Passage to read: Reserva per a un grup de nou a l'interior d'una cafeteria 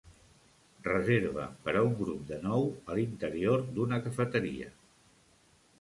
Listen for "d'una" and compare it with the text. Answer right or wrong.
right